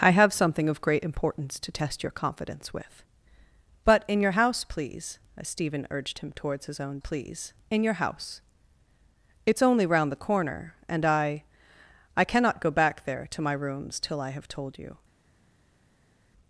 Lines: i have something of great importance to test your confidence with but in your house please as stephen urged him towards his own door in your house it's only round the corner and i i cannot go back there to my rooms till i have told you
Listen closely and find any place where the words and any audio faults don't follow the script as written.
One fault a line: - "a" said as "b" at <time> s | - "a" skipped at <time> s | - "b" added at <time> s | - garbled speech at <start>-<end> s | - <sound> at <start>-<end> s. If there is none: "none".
- "door" said as "please" at 7.0 s